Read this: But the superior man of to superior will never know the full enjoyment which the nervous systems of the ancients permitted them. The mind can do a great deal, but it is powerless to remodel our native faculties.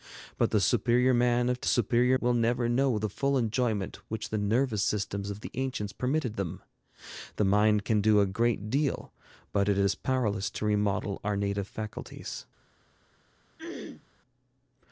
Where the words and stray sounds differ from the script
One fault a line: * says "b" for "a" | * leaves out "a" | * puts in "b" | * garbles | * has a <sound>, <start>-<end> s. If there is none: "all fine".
* has a throat clearing, 13.6-14.1 s